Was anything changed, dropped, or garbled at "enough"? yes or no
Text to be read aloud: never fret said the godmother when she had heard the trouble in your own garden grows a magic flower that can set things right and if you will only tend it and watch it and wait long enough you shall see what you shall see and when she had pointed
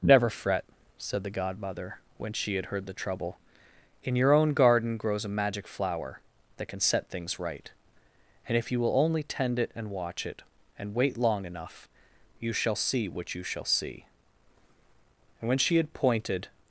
no